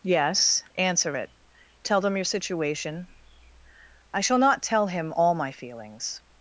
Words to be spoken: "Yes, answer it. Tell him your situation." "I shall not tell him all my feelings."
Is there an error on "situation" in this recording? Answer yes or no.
no